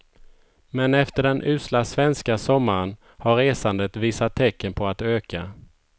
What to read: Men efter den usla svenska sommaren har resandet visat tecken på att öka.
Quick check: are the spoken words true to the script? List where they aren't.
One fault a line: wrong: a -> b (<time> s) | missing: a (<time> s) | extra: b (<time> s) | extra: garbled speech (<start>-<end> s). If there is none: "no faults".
no faults